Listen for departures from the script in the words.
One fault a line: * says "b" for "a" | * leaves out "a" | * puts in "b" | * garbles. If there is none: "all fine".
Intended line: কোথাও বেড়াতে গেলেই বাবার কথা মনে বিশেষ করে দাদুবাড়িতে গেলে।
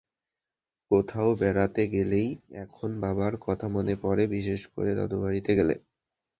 * puts in "এখন"
* puts in "পড়ে"